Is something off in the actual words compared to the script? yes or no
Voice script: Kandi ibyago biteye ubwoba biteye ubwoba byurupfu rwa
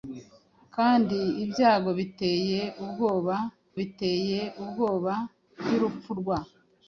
no